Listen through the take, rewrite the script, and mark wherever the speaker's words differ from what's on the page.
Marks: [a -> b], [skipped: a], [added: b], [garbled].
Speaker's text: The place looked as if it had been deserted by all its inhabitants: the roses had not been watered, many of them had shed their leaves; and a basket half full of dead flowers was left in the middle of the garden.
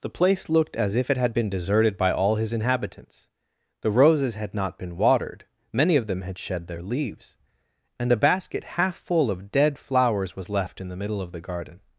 The place looked as if it had been deserted by all [its -> his] inhabitants: the roses had not been watered, many of them had shed their leaves; and a basket half full of dead flowers was left in the middle of the garden.